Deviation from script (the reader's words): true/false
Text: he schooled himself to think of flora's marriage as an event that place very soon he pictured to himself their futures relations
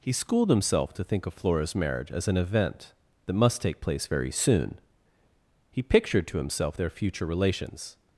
true